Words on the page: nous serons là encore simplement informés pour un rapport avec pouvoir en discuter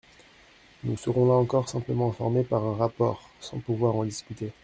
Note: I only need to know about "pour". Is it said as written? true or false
false